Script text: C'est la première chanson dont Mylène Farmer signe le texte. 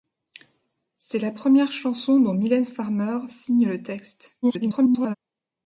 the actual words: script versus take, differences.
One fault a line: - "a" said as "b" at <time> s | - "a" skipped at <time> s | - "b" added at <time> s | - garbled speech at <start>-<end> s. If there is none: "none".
- garbled speech at 4.4-5.2 s